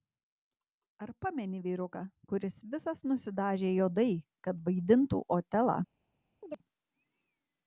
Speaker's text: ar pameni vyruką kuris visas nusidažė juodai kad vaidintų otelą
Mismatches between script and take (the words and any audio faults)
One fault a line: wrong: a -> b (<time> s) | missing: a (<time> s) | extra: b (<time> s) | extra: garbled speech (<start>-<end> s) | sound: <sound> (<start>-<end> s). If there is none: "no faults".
sound: chirp (6.4-6.6 s)